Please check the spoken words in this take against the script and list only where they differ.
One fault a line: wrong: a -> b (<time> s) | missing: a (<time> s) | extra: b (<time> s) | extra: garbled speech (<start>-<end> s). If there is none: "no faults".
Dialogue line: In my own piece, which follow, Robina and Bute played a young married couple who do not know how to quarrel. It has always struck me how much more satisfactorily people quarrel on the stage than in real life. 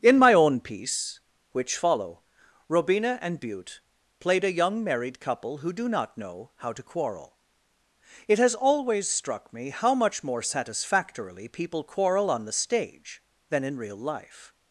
no faults